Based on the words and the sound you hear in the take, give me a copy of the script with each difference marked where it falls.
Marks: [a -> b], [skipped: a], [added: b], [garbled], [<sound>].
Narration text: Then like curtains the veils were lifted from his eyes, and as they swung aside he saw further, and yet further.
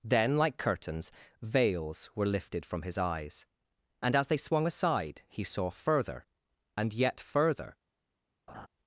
Then like curtains [skipped: the] veils were lifted from his eyes, and as they swung aside he saw further, and yet further. [laugh]